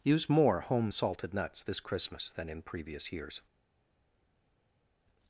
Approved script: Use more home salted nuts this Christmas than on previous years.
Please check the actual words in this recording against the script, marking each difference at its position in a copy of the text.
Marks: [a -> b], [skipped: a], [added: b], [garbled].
Use more home salted nuts this Christmas than [on -> in] previous years.